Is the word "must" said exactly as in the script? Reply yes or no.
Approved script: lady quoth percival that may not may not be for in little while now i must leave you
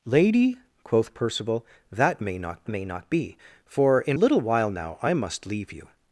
yes